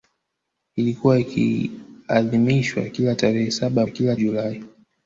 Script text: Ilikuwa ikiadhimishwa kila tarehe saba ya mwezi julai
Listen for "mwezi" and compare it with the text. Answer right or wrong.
wrong